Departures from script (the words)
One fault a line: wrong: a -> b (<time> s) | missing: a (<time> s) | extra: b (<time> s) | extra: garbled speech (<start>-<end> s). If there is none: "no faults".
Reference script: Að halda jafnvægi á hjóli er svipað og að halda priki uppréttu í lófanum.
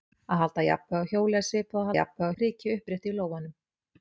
wrong: halda -> jafnvægi (2.0 s)